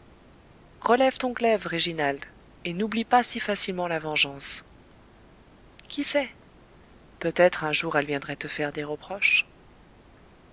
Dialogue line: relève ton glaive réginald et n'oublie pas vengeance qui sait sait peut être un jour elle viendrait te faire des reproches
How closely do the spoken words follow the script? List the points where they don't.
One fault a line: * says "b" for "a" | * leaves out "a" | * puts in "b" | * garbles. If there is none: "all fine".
* puts in "si facilement la"
* leaves out "sait"